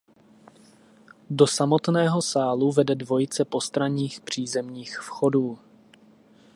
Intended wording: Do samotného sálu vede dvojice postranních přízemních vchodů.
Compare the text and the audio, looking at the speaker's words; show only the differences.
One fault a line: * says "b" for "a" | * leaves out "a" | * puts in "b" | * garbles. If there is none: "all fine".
all fine